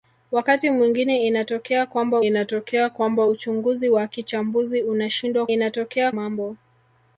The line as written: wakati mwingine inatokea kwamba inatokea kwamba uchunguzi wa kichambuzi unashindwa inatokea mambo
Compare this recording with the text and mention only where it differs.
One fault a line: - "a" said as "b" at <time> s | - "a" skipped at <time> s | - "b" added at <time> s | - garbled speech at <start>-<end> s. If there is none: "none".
none